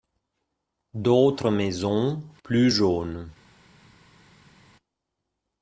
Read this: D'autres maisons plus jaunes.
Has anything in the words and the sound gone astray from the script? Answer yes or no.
no